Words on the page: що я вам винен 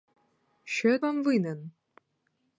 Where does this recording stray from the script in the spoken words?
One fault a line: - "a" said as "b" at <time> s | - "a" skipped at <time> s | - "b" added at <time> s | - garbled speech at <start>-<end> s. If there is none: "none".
none